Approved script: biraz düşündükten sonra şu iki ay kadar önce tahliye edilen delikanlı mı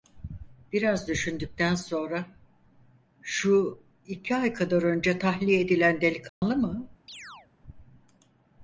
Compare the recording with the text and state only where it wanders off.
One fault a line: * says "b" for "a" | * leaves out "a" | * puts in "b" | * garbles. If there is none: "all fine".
all fine